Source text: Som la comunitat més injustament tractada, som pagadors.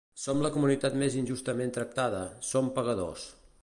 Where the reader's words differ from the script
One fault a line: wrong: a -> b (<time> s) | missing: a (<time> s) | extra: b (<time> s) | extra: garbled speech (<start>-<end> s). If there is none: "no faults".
no faults